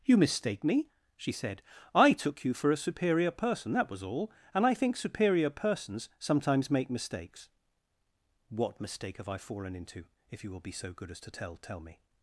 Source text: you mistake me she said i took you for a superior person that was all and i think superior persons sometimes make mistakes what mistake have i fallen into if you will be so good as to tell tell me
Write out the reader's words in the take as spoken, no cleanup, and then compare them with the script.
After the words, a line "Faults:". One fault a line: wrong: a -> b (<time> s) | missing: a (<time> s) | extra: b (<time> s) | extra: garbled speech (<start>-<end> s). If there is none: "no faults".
you mistake me she said i took you for a superior person that was all and i think superior persons sometimes make mistakes what mistake have i fallen into if you will be so good as to tell tell me
Faults:
no faults